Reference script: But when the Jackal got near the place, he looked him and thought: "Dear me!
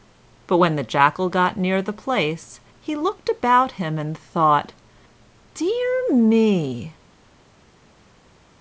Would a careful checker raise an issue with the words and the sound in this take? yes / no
yes